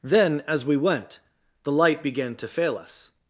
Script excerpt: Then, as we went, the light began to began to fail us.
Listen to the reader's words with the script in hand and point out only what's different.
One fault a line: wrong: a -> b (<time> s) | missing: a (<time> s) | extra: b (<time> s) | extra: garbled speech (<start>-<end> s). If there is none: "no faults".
missing: began to (2.5 s)